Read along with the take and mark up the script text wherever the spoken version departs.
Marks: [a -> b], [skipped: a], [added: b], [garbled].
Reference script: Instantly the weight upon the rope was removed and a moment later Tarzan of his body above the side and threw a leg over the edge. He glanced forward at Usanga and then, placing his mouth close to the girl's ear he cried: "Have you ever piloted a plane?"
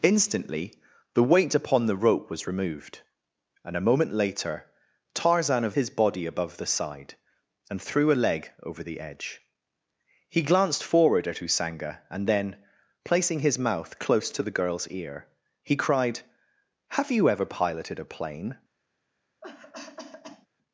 Instantly the weight upon the rope was removed and a moment later Tarzan of his body above the side and threw a leg over the edge. He glanced forward at Usanga and then, placing his mouth close to the girl's ear he cried: "Have you ever piloted a plane?"